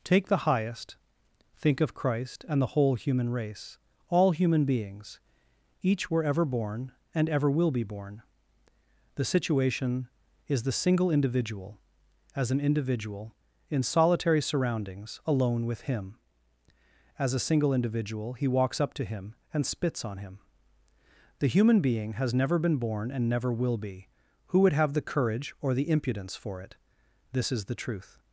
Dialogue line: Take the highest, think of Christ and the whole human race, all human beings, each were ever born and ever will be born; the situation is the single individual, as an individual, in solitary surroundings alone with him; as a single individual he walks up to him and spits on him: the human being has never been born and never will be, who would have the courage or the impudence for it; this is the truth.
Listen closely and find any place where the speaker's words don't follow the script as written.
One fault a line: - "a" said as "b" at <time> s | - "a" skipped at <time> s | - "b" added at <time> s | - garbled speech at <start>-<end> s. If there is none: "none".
none